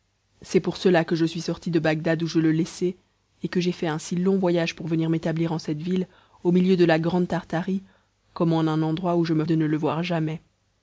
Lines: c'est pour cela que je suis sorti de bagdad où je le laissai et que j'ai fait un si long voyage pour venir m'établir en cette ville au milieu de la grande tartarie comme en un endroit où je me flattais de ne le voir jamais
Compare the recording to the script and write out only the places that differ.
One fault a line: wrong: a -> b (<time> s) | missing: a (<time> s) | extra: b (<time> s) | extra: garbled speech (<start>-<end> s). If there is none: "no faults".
missing: flattais (9.4 s)